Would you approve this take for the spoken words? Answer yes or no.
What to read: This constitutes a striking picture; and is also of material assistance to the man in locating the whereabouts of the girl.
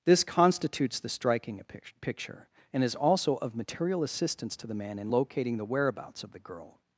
no